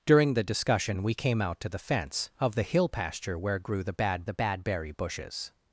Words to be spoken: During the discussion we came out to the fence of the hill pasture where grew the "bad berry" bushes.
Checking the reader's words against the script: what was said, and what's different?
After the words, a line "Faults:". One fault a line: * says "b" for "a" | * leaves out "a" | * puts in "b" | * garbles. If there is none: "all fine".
During the discussion we came out to the fence of the hill pasture where grew the "bad the bad berry" bushes.
Faults:
* puts in "the bad"